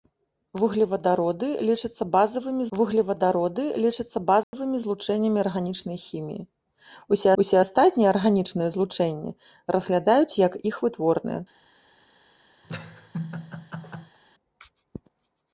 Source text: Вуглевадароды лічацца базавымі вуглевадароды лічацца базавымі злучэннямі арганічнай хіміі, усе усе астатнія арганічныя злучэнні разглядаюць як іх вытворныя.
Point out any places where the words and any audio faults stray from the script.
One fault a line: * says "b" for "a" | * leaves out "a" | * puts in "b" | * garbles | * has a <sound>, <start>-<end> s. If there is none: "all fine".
* has a dropout, 4.4-4.5 s
* has a laugh, 12.6-14.2 s